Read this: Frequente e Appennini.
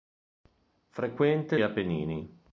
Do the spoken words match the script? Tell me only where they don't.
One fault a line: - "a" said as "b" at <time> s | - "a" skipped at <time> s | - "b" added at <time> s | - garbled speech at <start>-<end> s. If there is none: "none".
none